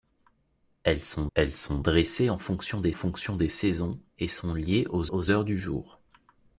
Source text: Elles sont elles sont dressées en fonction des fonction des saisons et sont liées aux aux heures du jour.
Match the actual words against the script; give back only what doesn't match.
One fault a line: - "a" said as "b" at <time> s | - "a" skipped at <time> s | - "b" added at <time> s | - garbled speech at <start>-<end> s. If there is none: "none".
none